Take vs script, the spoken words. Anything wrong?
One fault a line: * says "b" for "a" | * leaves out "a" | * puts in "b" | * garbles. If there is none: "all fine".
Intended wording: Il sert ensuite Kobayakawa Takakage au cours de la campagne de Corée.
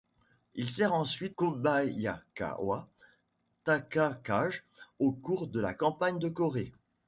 all fine